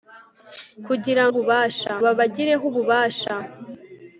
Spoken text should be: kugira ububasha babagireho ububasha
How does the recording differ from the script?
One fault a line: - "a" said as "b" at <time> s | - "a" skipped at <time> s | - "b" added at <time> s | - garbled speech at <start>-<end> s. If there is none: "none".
none